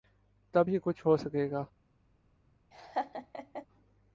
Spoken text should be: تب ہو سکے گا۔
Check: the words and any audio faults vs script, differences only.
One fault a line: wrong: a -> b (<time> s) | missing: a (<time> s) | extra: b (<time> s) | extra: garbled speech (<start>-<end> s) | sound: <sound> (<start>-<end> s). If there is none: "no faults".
extra: ہی کچھ (0.7 s)
sound: laugh (2.7-3.7 s)